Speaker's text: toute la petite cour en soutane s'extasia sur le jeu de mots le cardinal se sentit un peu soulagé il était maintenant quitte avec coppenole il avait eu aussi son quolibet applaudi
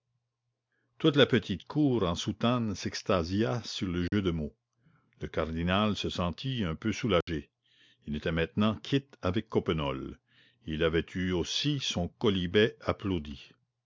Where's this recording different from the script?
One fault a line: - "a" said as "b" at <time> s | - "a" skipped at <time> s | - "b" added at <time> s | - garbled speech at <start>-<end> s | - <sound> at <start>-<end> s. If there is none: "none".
- dropout at 4.1-4.1 s
- dropout at 7.2-7.3 s